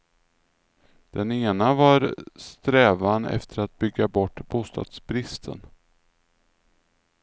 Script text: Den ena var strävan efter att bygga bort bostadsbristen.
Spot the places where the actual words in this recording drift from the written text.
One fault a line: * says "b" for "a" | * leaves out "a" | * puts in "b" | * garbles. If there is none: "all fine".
all fine